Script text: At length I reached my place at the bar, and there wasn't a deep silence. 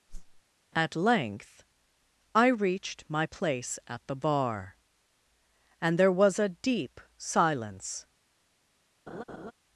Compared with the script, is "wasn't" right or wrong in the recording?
wrong